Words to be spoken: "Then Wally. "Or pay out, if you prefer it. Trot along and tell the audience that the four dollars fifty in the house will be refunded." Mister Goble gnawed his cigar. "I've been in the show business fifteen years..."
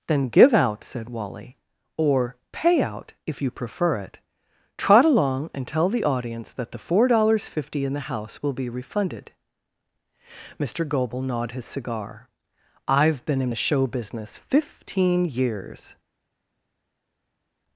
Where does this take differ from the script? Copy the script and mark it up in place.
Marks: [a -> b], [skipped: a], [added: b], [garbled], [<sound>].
"Then [added: give out said] Wally. "Or pay out, if you prefer it. Trot along and tell the audience that the four dollars fifty in the house will be refunded." Mister Goble gnawed his cigar. "I've been in the show business fifteen years..."